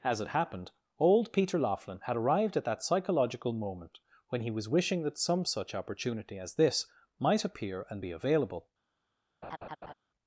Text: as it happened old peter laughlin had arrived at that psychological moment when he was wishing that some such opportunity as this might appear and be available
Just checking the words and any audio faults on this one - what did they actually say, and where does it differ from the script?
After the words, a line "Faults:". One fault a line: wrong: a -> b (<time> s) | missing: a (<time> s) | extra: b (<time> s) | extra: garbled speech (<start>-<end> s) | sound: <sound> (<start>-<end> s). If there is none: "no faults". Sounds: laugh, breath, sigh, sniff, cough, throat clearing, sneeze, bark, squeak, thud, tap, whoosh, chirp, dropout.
as it happened old peter laughlin had arrived at that psychological moment when he was wishing that some such opportunity as this might appear and be available
Faults:
sound: laugh (9.4-9.9 s)